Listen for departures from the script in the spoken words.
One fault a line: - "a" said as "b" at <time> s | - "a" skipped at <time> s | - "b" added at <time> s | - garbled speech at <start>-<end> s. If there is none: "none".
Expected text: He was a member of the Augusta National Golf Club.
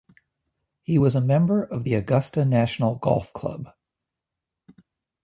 none